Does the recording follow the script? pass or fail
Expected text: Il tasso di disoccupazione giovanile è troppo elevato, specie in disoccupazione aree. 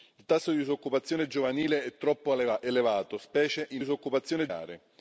pass